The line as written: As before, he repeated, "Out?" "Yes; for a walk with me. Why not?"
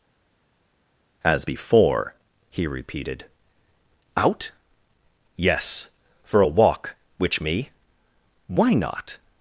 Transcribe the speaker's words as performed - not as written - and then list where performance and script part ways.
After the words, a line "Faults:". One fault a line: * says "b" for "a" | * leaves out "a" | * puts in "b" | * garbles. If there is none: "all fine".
As before, he repeated, "Out?" "Yes; for a walk which me. Why not?"
Faults:
* says "which" for "with"